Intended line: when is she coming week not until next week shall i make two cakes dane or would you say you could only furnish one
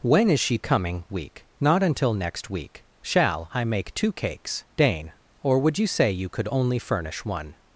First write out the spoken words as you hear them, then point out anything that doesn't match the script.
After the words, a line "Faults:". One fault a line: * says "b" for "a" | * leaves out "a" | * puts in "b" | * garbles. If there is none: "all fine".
when is she coming week not until next week shall i make two cakes dane or would you say you could only furnish one
Faults:
all fine